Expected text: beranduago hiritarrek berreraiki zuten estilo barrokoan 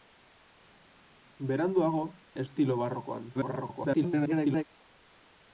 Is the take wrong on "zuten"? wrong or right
wrong